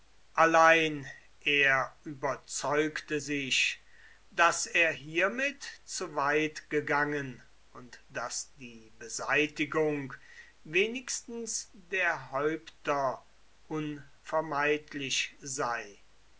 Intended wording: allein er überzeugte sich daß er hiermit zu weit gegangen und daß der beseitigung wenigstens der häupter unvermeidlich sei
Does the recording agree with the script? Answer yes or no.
no